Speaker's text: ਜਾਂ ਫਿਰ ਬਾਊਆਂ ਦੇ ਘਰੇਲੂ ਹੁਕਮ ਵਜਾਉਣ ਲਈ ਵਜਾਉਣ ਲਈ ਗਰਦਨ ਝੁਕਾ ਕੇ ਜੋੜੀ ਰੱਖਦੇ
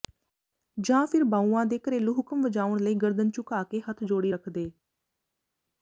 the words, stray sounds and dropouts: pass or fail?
fail